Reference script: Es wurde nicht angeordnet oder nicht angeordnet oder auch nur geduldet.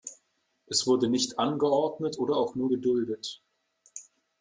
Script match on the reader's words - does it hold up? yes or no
no